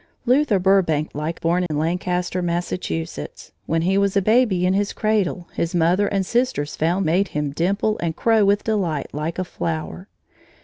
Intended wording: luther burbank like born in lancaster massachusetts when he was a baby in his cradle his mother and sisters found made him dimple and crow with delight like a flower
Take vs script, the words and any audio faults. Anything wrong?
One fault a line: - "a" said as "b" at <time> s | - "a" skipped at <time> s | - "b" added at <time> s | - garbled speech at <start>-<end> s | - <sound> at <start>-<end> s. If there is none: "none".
- dropout at 1.7-1.7 s